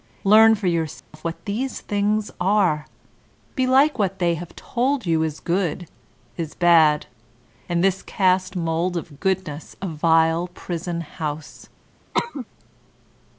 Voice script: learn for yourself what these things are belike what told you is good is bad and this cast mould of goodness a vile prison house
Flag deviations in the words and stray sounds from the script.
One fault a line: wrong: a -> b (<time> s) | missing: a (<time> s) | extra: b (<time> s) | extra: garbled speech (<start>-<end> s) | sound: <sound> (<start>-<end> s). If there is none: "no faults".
sound: dropout (1.0-1.1 s)
extra: they have (4.2 s)
sound: cough (12.1-12.5 s)